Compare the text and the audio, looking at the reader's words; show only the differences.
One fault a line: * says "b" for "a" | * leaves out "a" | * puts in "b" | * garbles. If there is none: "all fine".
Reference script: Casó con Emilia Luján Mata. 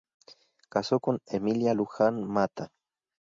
all fine